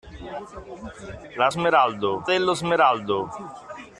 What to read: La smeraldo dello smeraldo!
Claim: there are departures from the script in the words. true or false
false